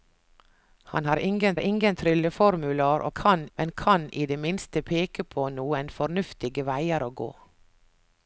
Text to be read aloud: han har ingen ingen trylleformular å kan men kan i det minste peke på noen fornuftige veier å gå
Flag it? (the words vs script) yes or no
no